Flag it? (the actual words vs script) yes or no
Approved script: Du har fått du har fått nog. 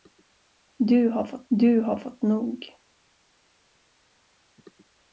no